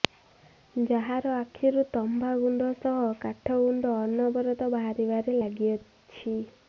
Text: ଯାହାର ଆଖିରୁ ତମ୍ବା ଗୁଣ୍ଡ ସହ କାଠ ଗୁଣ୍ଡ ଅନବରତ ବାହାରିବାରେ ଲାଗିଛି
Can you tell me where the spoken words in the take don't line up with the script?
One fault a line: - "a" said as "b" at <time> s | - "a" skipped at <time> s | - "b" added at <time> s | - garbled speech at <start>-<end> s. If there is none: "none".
none